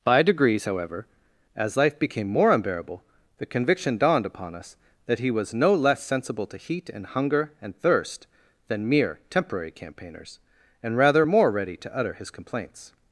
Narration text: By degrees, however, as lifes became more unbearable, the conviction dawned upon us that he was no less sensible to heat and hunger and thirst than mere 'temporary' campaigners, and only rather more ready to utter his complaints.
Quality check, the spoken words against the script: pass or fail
fail